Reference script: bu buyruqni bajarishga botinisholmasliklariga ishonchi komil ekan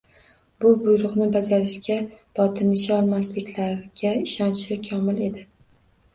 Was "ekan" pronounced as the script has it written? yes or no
no